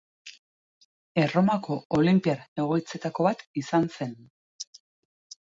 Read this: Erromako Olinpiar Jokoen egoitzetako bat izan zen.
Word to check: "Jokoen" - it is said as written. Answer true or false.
false